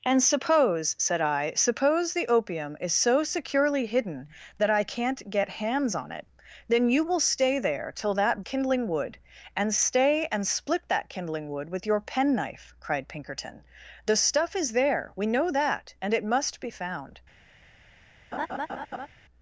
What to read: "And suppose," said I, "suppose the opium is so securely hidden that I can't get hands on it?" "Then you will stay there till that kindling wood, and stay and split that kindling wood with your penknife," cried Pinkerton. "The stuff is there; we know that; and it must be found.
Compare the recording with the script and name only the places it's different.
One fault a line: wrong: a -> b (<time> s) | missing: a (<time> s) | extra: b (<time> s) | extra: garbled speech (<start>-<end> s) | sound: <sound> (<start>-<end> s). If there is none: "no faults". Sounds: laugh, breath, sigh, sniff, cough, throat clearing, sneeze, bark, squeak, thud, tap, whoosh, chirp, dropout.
sound: laugh (18.3-19.1 s)